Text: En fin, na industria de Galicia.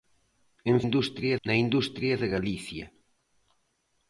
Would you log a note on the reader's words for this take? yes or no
yes